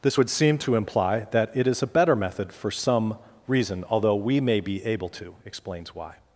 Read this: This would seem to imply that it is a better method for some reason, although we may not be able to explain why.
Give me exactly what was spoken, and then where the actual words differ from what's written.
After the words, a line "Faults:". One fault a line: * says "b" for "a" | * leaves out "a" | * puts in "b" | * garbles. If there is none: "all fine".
This would seem to imply that it is a better method for some reason, although we may be able to explains why.
Faults:
* leaves out "not"
* says "explains" for "explain"